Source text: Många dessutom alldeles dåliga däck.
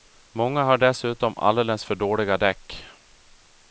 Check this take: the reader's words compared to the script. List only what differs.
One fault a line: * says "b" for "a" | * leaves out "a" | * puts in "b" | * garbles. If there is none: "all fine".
* puts in "har"
* puts in "för"